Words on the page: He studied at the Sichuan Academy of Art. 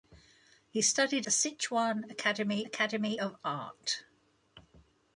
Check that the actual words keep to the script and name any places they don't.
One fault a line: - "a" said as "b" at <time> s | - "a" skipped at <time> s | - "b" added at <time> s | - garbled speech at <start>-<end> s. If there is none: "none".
- "at" skipped at 1.3 s
- "Academy" added at 2.6 s